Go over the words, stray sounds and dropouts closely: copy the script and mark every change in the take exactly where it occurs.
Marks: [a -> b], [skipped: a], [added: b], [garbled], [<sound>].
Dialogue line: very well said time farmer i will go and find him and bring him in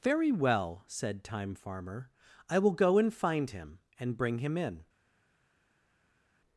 very well said time farmer i will go and find him and bring him in